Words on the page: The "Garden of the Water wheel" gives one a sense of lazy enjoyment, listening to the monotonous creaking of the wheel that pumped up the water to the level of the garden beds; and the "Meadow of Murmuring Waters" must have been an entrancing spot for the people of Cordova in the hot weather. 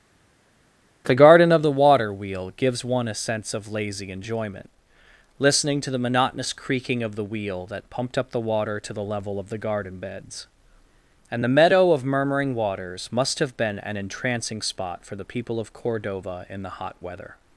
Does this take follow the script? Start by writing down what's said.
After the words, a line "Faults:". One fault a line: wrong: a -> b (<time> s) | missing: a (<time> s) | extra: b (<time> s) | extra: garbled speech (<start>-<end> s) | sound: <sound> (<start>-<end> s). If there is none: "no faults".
The "Garden of the Water wheel" gives one a sense of lazy enjoyment, listening to the monotonous creaking of the wheel that pumped up the water to the level of the garden beds; and the "Meadow of Murmuring Waters" must have been an entrancing spot for the people of Cordova in the hot weather.
Faults:
no faults